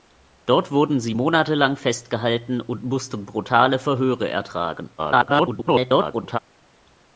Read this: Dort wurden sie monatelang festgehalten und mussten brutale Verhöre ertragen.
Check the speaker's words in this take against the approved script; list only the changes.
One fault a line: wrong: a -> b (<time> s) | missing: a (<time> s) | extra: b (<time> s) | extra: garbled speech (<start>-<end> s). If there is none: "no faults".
extra: garbled speech (5.0-6.4 s)